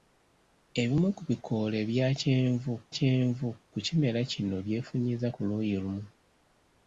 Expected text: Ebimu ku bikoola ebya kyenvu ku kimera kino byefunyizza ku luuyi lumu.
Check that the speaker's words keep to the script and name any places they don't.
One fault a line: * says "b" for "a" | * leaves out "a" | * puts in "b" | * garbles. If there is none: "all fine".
* puts in "kyenvu"